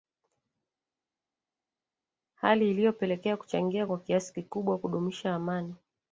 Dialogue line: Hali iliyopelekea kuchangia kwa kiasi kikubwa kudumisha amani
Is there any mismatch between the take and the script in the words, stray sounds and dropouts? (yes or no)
no